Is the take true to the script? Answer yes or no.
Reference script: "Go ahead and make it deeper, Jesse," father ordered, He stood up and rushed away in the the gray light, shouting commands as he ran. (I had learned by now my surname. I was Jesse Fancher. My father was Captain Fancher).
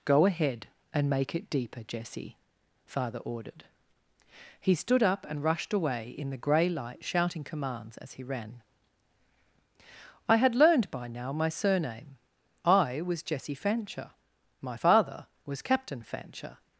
no